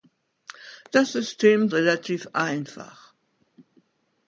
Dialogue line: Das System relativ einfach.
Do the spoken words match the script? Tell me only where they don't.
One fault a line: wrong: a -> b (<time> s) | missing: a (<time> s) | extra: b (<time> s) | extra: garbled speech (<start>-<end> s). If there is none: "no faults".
no faults